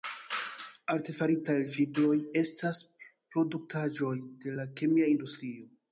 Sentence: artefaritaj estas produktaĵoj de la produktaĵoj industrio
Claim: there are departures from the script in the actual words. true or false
true